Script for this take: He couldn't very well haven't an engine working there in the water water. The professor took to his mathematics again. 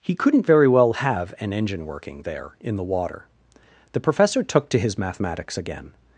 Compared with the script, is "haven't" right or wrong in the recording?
wrong